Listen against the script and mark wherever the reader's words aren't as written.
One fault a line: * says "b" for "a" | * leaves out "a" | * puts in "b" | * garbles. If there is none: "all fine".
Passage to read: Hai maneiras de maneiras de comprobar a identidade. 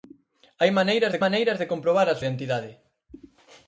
all fine